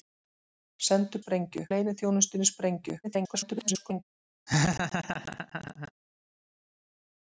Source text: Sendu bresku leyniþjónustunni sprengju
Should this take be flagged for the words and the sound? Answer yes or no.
yes